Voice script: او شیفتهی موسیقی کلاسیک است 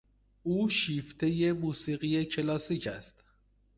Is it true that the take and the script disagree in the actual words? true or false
false